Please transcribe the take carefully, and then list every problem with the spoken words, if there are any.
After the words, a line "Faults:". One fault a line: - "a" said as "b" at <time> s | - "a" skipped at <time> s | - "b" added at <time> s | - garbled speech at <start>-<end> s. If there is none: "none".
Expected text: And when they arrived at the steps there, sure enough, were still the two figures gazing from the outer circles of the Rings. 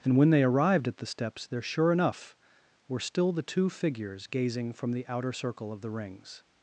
And when they arrived at the steps there, sure enough, were still the two figures gazing from the outer circle of the Rings.
Faults:
- "circles" said as "circle" at 5.3 s